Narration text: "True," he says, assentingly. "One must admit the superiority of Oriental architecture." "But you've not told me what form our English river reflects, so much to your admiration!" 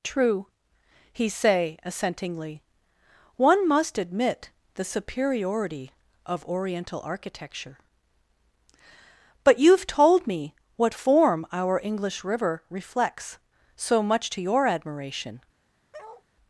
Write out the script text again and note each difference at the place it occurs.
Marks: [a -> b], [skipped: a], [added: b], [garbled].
"True," he [says, -> say] assentingly. "One must admit the superiority of Oriental architecture." "But you've [skipped: not] told me what form our English river reflects, so much to your admiration!"